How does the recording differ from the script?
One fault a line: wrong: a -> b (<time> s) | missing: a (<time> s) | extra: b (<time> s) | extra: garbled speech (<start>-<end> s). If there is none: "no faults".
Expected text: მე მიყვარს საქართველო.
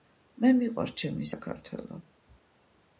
extra: ჩემი (1.0 s)